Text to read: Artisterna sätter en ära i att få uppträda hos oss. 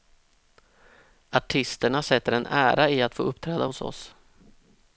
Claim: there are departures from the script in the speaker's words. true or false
false